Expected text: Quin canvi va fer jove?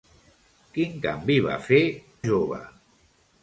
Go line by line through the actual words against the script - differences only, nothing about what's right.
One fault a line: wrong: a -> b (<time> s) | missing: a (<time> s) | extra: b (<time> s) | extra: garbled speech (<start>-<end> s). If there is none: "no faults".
no faults